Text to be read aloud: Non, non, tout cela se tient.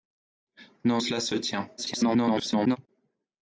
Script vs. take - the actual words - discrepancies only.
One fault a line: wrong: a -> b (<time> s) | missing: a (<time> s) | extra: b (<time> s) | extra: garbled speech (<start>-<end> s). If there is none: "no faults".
missing: non tout (1.0 s)
extra: garbled speech (1.8-2.8 s)